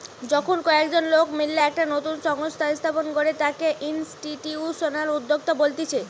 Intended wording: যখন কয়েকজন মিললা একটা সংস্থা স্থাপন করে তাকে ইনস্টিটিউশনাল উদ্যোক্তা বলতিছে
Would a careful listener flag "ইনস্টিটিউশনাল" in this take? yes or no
no